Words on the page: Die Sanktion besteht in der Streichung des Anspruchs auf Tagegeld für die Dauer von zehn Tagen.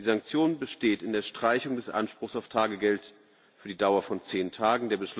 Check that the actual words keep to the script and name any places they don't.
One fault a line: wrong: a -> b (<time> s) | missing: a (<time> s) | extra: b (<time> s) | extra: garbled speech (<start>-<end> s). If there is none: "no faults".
no faults